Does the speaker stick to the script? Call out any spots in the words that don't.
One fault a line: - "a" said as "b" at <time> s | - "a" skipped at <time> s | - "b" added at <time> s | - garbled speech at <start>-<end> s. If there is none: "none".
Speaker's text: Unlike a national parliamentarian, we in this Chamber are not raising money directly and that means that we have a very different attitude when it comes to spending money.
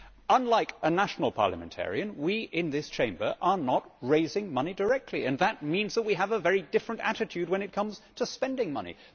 none